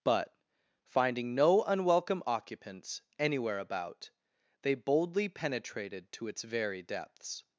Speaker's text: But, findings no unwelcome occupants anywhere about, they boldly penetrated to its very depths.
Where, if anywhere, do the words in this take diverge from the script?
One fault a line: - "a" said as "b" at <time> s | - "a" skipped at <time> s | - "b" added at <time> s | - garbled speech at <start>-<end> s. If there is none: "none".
- "findings" said as "finding" at 0.8 s